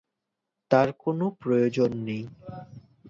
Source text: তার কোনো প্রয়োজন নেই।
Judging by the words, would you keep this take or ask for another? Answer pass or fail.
pass